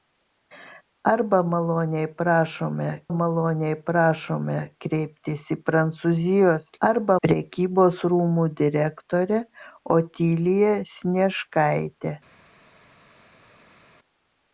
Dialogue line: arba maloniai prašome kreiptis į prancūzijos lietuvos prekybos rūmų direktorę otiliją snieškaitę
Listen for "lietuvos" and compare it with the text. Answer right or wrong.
wrong